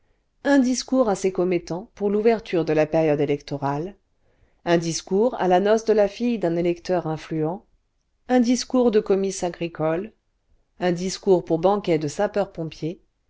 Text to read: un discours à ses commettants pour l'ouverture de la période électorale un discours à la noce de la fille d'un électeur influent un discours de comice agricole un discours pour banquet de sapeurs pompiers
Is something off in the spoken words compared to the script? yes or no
no